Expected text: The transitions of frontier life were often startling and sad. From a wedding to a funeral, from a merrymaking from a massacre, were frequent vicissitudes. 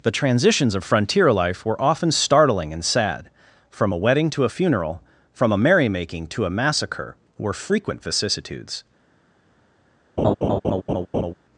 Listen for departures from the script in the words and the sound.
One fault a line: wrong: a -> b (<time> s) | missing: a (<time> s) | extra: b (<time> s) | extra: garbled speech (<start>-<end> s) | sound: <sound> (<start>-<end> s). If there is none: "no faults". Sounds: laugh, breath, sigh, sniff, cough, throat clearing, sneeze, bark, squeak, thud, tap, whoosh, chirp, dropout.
wrong: from -> to (6.3 s)
sound: laugh (10.2-11.3 s)